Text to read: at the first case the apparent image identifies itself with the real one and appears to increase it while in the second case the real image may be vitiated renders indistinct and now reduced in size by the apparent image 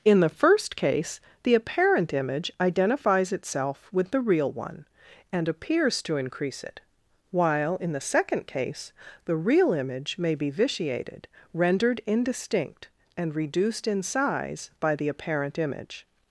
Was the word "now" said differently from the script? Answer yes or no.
yes